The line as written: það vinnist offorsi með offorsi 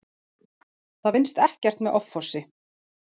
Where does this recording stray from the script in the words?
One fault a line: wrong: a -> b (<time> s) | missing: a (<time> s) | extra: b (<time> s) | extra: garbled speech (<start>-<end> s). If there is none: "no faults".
wrong: offorsi -> ekkert (1.4 s)